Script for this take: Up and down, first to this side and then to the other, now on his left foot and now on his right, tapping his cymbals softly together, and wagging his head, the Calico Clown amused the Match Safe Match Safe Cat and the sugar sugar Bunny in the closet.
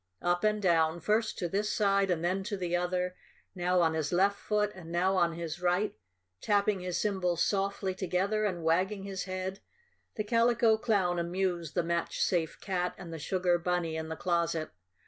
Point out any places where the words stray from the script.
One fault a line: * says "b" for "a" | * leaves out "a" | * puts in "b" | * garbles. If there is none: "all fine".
* leaves out "Match Safe"
* leaves out "sugar"